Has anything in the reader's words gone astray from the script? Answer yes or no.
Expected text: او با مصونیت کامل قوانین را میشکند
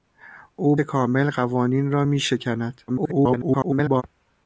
yes